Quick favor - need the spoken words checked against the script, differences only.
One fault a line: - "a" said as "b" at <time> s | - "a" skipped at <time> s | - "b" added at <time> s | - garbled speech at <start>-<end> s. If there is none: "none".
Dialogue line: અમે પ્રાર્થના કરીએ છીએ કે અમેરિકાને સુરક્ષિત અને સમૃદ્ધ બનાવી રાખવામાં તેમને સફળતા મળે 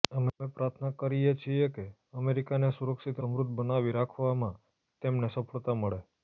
- "અને" skipped at 3.2 s